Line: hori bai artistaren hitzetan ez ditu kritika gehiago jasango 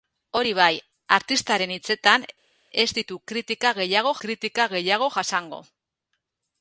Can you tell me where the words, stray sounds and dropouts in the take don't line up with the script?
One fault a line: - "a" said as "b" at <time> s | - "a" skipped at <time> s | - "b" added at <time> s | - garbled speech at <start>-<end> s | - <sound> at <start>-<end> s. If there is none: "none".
- "kritika gehiago" added at 4.3 s